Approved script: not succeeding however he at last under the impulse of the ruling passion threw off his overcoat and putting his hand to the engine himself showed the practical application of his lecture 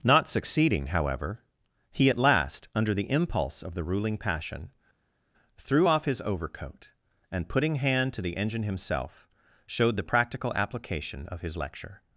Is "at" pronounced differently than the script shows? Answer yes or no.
no